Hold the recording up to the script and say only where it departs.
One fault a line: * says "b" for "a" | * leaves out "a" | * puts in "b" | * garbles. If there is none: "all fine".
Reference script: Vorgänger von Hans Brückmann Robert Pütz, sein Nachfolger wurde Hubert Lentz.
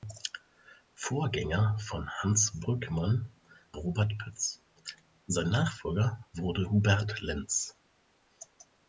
all fine